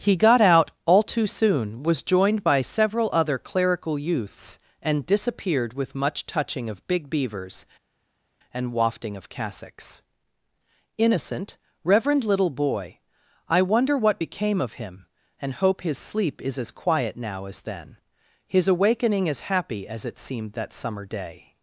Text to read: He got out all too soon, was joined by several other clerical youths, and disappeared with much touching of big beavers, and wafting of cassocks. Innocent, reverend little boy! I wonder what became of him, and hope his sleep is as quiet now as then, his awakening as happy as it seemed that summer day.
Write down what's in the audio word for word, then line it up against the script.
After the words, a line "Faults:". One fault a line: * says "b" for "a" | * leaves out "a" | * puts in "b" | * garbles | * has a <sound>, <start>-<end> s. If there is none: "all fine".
He got out all too soon, was joined by several other clerical youths, and disappeared with much touching of big beavers, and wafting of cassocks. Innocent, reverend little boy! I wonder what became of him, and hope his sleep is as quiet now as then, his awakening as happy as it seemed that summer day.
Faults:
all fine